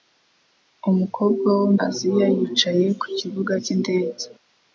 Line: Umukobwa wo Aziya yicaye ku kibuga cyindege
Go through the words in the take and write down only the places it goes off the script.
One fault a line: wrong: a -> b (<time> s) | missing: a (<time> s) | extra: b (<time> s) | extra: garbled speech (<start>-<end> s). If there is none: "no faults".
no faults